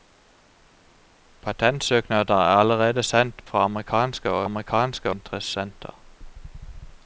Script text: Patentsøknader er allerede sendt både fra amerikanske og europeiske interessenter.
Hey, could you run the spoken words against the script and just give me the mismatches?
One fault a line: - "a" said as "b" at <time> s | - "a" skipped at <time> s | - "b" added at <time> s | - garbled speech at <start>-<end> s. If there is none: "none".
- "både" skipped at 3.5 s
- "europeiske" said as "amerikanske" at 4.4 s